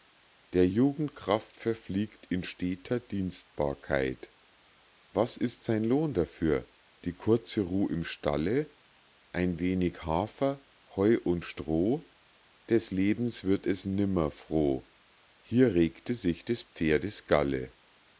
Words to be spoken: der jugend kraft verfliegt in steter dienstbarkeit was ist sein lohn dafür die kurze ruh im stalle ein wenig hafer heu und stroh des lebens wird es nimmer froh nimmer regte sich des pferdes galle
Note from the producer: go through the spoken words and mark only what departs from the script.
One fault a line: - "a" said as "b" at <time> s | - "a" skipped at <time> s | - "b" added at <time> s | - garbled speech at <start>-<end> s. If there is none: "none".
- "nimmer" said as "hier" at 15.4 s